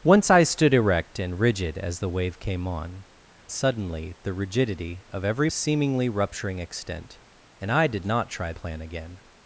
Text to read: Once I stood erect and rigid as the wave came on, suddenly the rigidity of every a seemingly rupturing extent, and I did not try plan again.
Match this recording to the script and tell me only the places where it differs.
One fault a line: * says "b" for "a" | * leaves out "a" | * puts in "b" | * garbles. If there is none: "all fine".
all fine